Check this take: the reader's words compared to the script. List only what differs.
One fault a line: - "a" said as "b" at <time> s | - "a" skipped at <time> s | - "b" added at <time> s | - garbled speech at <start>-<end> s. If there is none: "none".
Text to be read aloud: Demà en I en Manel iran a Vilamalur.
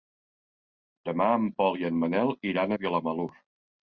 - "Pol" added at 1.6 s